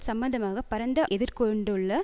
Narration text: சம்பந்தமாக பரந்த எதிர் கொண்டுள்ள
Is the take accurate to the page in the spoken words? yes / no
yes